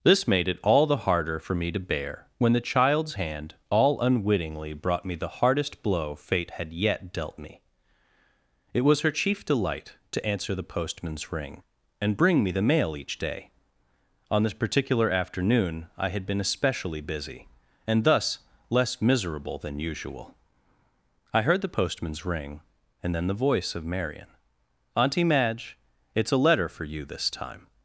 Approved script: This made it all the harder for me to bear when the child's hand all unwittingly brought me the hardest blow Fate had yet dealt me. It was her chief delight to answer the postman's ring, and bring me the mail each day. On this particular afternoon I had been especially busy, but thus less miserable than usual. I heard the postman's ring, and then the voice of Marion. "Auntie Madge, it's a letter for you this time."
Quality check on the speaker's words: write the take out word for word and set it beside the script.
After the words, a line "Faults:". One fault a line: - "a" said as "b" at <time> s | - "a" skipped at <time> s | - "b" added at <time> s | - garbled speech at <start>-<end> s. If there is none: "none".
This made it all the harder for me to bear when the child's hand all unwittingly brought me the hardest blow Fate had yet dealt me. It was her chief delight to answer the postman's ring, and bring me the mail each day. On this particular afternoon I had been especially busy, and thus less miserable than usual. I heard the postman's ring, and then the voice of Marion. "Auntie Madge, it's a letter for you this time."
Faults:
- "but" said as "and" at 17.9 s